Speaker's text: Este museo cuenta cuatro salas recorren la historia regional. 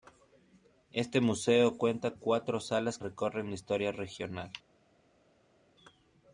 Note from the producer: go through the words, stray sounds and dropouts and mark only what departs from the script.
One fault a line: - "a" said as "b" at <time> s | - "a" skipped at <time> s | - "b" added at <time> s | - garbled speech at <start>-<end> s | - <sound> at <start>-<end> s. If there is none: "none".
none